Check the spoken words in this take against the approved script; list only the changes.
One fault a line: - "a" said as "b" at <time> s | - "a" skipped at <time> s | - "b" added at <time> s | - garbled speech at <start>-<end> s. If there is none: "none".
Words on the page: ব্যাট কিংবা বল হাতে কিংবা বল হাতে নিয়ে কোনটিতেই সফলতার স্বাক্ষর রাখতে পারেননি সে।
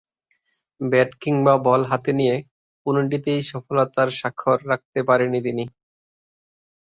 - "কিংবা বল হাতে" skipped at 2.1 s
- "সে" said as "তিনি" at 5.5 s